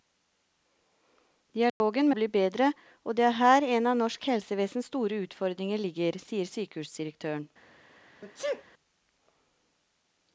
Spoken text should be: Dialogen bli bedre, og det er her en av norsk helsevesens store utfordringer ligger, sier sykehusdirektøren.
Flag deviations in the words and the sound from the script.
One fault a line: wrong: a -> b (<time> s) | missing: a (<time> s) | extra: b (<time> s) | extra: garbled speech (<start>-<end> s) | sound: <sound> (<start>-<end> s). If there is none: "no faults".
sound: dropout (1.7-1.8 s)
sound: sneeze (8.2-8.6 s)